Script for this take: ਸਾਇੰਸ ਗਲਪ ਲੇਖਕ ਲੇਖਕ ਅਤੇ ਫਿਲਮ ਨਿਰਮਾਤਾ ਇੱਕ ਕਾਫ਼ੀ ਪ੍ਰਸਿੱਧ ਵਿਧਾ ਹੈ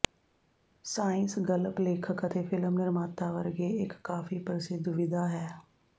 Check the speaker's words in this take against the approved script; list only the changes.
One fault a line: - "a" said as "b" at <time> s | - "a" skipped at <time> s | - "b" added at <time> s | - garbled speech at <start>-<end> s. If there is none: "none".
- "ਲੇਖਕ" skipped at 2.3 s
- "ਵਰਗੇ" added at 3.3 s